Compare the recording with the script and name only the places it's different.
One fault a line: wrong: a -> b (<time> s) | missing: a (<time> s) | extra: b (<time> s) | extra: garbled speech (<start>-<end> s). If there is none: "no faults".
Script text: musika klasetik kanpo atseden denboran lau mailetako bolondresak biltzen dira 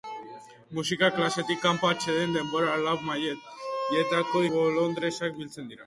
no faults